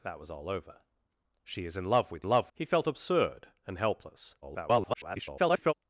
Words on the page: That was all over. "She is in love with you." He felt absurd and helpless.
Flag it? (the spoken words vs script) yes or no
yes